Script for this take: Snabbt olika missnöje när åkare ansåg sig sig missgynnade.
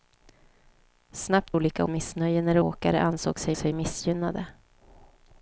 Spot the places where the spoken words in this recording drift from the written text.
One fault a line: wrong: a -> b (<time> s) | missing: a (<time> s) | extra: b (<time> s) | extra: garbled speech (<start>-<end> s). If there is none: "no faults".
no faults